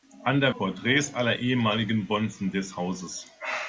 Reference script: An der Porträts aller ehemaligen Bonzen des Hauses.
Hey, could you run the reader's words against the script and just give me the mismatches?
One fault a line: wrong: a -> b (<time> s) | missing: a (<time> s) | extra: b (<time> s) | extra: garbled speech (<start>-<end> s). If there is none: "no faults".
no faults